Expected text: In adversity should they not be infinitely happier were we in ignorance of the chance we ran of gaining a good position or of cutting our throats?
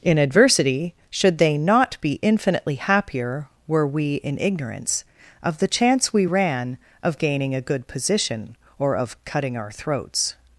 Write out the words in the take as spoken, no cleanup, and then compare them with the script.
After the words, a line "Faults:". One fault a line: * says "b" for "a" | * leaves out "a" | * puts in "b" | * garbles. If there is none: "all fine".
In adversity should they not be infinitely happier were we in ignorance of the chance we ran of gaining a good position or of cutting our throats?
Faults:
all fine